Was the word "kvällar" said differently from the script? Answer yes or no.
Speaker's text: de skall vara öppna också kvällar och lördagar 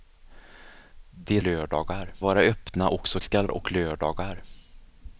yes